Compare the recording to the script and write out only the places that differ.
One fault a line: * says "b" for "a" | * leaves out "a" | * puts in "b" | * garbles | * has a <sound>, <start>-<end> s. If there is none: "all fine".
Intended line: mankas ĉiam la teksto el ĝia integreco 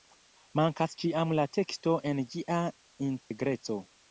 * says "en" for "el"
* has a dropout, 3.2-3.3 s